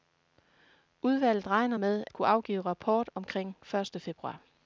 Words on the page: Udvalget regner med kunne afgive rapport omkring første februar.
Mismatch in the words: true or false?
false